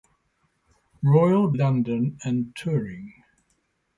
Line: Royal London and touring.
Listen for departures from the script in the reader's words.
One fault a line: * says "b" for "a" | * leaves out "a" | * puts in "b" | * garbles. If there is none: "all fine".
all fine